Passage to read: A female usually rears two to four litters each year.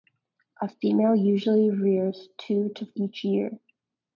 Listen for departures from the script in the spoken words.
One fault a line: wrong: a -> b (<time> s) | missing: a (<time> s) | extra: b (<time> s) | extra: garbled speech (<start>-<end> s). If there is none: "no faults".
missing: four litters (2.9 s)